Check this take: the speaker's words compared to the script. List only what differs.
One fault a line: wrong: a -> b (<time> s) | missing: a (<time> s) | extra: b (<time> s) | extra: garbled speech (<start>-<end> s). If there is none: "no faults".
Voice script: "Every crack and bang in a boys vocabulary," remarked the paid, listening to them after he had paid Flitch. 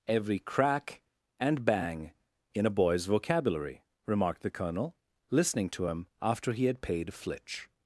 wrong: paid -> colonel (4.5 s)
wrong: them -> him (5.9 s)